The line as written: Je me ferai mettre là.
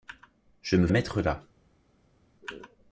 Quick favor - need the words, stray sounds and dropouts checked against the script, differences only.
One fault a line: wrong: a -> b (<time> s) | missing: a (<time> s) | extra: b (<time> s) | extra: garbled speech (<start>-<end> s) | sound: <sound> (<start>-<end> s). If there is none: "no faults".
missing: ferai (0.9 s)